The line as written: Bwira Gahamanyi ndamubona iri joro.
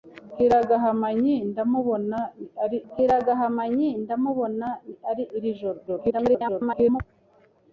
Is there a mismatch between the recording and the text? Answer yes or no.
yes